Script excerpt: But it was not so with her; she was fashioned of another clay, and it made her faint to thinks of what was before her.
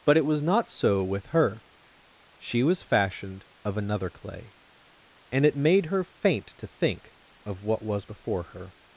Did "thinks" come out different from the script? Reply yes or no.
yes